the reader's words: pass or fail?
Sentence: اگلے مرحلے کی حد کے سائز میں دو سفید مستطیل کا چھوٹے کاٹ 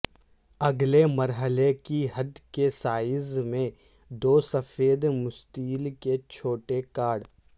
fail